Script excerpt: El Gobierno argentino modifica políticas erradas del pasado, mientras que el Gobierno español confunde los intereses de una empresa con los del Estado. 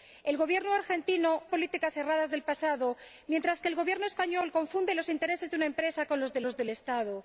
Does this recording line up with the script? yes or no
no